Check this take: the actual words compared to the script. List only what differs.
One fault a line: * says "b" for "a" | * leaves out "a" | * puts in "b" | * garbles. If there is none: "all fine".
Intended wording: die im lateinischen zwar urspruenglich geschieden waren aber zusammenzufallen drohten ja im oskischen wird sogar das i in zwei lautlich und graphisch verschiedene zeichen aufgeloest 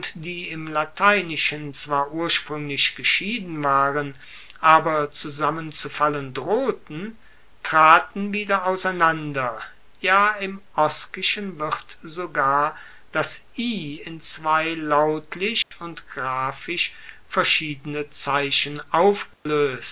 * puts in "traten wieder auseinander"